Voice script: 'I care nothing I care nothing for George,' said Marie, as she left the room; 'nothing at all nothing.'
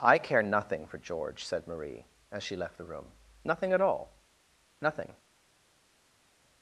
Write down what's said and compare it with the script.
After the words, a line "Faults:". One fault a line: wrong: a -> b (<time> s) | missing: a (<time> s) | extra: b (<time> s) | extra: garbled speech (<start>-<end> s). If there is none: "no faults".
'I care nothing for George,' said Marie, as she left the room; 'nothing at all nothing.'
Faults:
missing: I care nothing (0.9 s)